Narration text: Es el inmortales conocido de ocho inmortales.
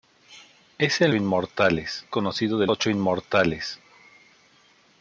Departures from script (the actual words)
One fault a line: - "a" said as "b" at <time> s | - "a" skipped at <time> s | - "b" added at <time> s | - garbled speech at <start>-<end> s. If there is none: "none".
none